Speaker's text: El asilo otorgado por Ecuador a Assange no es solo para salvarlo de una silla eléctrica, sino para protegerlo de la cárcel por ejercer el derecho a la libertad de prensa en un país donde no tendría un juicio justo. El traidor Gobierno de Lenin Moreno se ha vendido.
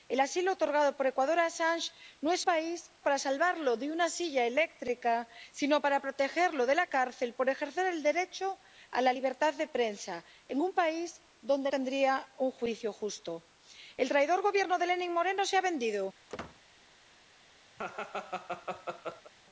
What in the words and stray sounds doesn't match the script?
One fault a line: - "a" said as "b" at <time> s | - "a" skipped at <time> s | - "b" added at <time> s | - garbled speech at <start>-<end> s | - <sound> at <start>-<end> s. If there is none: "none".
- "solo" said as "país" at 2.4 s
- "no" skipped at 11.7 s
- squeak at 16.3-16.6 s
- laugh at 17.8-19.3 s